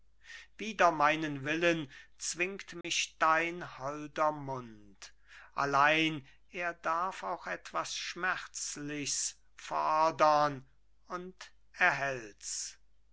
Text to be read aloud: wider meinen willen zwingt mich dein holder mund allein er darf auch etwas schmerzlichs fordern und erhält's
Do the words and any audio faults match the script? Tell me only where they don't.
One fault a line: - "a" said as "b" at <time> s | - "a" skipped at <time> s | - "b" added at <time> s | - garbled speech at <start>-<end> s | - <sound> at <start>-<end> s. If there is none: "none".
- dropout at 2.8-2.8 s